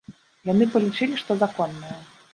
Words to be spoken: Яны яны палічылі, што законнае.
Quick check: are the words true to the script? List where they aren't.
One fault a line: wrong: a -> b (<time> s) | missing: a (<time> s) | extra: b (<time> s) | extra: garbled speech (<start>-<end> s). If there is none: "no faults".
missing: яны (0.7 s)